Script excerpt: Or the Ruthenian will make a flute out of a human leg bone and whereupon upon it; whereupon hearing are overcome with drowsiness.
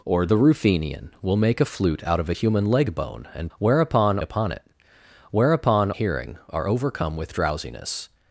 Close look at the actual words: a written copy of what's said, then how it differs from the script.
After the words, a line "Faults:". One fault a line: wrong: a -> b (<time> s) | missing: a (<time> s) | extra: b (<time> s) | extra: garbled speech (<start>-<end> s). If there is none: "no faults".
Or the Ruthenian will make a flute out of a human leg bone and whereupon upon it; whereupon hearing are overcome with drowsiness.
Faults:
no faults